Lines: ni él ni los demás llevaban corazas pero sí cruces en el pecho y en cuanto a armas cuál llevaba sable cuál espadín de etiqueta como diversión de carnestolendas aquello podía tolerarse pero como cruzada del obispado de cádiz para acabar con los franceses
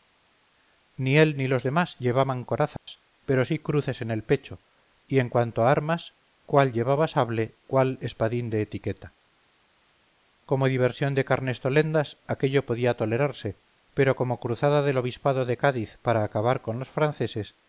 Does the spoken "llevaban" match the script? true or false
true